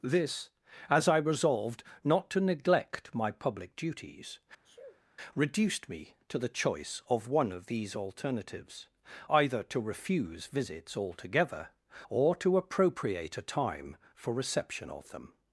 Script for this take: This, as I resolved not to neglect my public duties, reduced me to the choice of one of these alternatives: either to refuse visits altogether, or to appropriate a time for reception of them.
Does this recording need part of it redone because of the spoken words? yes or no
no